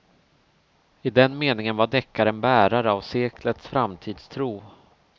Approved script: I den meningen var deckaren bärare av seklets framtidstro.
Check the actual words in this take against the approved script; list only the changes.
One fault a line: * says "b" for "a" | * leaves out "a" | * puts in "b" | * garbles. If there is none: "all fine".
all fine